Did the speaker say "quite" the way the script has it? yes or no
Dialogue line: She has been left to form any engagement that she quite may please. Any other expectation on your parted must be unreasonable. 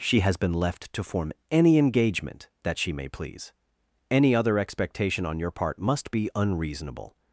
no